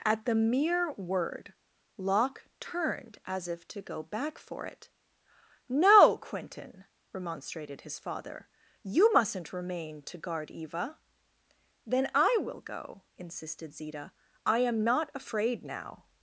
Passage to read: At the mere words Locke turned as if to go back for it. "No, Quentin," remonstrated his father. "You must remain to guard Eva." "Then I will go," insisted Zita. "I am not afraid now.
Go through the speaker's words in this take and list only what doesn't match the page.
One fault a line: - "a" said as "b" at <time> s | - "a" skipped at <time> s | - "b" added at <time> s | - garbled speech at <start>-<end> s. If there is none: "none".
- "words" said as "word" at 0.9 s
- "must" said as "mustn't" at 9.1 s